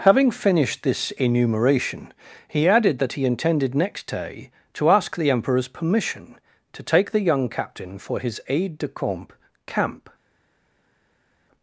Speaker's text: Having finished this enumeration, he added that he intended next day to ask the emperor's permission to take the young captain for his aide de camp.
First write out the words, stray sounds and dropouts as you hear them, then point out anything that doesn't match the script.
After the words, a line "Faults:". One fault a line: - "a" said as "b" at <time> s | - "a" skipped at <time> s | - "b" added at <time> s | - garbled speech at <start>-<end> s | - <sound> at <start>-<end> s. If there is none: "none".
Having finished this enumeration, he added that he intended next day to ask the emperor's permission to take the young captain for his aide de camp camp.
Faults:
- "camp" added at 9.7 s